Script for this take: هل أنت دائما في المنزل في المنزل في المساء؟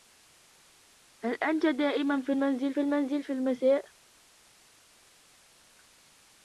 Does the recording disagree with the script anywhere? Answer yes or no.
no